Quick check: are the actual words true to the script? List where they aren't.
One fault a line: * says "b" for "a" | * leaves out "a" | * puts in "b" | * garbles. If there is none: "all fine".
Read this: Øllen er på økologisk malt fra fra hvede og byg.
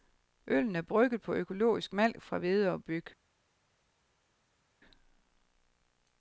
* puts in "brygget"
* leaves out "fra"